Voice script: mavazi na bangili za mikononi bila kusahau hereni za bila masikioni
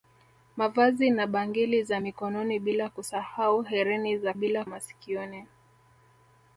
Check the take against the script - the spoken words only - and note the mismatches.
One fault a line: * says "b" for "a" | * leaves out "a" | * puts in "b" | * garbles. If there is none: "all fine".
all fine